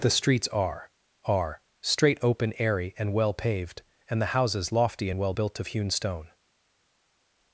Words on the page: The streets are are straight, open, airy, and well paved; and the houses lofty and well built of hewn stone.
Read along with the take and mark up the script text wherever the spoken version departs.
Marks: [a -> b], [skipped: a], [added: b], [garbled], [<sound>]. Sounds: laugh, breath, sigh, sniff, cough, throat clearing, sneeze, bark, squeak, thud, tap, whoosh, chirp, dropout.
The streets are are straight, open, airy, and well paved; and the houses lofty and well built of hewn stone.